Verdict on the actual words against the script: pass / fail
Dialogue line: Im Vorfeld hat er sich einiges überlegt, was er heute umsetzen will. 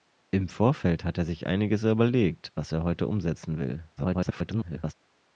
fail